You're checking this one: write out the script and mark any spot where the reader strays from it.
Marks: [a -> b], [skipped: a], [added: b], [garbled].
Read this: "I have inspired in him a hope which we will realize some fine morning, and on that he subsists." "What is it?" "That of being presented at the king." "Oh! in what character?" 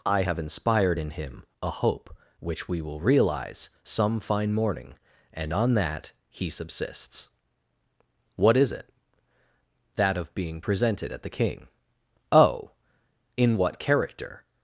"I have inspired in him a hope which we will realize some fine morning, and on that he subsists." "What is it?" "That of being presented at the king." "Oh! in what character?"